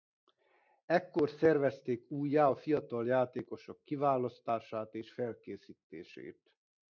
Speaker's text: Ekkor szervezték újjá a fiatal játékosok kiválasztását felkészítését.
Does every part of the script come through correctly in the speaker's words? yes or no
no